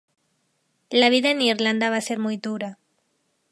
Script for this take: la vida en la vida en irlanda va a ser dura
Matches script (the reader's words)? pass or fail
fail